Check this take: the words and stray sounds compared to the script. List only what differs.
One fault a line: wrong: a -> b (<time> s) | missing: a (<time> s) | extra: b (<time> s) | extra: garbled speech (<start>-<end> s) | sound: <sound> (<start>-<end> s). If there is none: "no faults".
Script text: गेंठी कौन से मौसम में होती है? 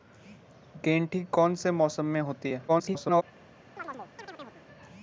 extra: garbled speech (2.7-3.2 s)
sound: chirp (3.8-4.6 s)